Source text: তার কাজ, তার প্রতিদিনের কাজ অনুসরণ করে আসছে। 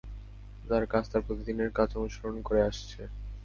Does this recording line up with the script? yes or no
yes